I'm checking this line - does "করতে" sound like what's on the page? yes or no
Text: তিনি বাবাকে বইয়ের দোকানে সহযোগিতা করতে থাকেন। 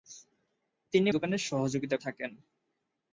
no